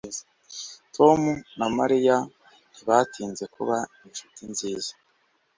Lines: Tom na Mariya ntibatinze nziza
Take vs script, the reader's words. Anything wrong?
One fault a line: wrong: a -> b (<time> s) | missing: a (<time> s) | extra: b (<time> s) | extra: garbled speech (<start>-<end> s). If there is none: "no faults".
extra: kuba inshuti (3.6 s)